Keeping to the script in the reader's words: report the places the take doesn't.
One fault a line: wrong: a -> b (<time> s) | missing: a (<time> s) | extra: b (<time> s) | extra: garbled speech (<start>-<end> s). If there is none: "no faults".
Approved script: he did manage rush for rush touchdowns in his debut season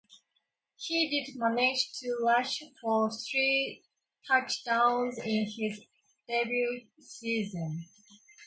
extra: to (2.0 s)
wrong: rush -> three (3.1 s)